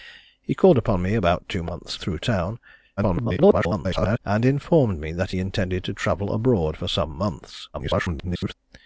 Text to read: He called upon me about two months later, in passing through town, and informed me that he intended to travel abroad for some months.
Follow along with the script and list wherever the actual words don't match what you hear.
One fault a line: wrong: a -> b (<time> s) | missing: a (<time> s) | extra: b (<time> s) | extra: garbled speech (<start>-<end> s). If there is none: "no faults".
missing: later in passing (2.0 s)
extra: garbled speech (3.0-4.2 s)
extra: garbled speech (7.7-8.5 s)